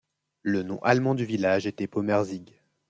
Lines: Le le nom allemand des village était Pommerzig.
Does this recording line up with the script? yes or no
no